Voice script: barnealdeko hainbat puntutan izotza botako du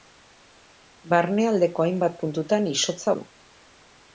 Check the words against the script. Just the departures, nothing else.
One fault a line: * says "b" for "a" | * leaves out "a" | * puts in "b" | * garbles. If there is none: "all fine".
* leaves out "botako"